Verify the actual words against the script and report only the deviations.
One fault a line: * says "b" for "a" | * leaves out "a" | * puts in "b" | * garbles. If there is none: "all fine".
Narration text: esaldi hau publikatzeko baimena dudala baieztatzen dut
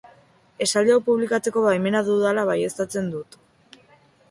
all fine